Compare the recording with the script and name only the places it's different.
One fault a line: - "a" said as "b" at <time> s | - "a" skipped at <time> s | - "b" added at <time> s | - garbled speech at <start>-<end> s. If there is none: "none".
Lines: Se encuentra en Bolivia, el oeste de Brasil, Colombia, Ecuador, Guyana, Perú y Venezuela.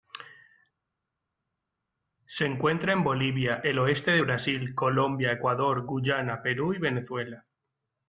none